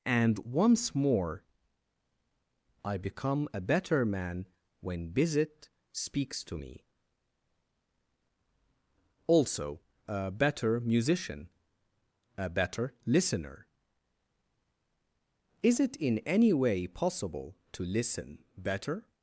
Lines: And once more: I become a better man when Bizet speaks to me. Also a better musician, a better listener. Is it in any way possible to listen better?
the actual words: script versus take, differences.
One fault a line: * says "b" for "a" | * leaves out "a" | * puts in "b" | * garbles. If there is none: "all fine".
all fine